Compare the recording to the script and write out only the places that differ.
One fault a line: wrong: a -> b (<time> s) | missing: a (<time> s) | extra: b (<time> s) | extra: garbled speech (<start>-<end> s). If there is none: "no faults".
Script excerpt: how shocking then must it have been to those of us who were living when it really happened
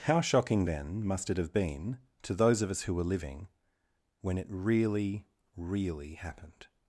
extra: really (5.6 s)